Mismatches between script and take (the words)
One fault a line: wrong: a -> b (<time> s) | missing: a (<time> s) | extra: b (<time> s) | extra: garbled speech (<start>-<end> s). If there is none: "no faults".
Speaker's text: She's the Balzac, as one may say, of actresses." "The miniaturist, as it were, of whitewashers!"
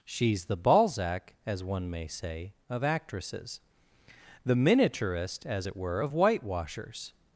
no faults